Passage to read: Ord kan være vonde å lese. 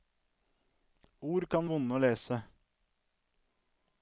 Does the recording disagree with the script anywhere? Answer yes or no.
yes